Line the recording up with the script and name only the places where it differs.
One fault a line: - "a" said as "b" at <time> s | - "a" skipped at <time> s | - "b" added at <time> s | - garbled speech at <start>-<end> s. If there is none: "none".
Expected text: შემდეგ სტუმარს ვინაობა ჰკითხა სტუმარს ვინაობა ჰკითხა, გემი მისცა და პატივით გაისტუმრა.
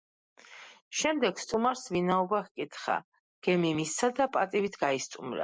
- "სტუმარს ვინაობა ჰკითხა" skipped at 3.0 s